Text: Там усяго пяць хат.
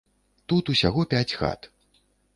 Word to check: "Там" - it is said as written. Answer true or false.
false